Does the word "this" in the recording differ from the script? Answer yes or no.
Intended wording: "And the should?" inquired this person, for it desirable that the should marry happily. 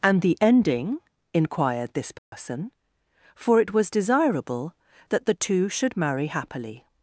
no